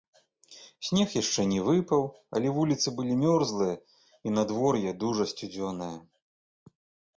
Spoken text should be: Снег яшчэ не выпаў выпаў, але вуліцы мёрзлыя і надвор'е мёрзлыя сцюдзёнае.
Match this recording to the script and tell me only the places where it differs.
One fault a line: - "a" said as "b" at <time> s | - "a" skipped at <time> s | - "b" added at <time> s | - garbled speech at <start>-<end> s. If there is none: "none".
- "выпаў" skipped at 2.0 s
- "былі" added at 3.0 s
- "мёрзлыя" said as "дужа" at 5.0 s